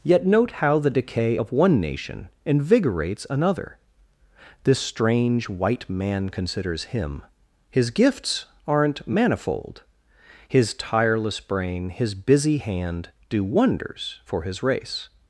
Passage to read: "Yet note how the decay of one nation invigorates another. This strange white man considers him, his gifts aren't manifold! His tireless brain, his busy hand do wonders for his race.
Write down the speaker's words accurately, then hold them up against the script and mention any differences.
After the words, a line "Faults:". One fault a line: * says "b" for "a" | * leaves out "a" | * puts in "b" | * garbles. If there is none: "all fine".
"Yet note how the decay of one nation invigorates another. This strange white man considers him, his gifts aren't manifold! His tireless brain, his busy hand do wonders for his race.
Faults:
all fine